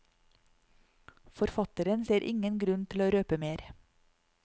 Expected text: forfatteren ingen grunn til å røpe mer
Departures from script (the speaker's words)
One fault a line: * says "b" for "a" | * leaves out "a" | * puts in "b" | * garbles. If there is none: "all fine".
* puts in "ser"